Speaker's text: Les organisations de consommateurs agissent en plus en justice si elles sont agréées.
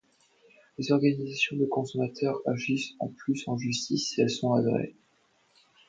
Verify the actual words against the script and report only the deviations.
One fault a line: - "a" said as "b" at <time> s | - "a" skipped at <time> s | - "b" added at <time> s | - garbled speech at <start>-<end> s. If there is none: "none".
none